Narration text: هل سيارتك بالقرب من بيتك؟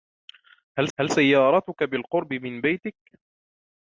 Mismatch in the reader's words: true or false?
true